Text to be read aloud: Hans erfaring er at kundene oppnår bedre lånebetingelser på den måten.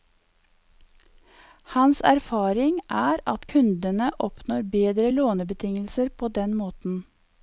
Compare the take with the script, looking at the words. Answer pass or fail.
pass